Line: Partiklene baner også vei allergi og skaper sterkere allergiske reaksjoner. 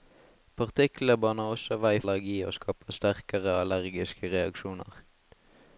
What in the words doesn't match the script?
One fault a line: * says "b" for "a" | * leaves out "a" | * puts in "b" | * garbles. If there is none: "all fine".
all fine